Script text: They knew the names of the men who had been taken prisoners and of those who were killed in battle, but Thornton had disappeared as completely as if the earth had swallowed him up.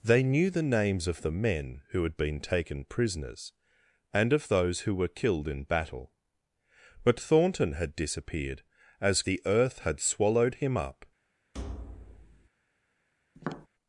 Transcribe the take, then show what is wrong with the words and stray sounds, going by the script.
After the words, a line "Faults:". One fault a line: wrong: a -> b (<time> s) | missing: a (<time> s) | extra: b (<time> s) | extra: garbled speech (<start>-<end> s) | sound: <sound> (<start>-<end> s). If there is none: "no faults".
They knew the names of the men who had been taken prisoners and of those who were killed in battle, but Thornton had disappeared as the earth had swallowed him up.
Faults:
missing: completely as if (9.2 s)
sound: thud (11.5-12.5 s)
sound: tap (13.3-13.7 s)